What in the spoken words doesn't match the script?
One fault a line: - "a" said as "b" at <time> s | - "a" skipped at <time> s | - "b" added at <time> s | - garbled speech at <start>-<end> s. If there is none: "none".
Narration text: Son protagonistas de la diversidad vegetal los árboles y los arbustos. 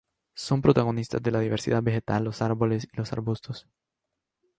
none